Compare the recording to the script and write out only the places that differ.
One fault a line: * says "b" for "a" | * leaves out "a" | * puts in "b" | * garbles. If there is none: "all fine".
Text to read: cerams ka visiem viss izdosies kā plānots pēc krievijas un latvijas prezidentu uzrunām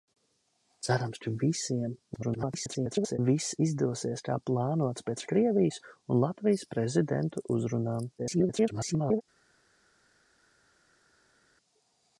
* garbles
* garbles